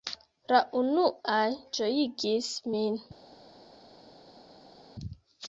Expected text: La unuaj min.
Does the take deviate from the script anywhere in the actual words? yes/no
yes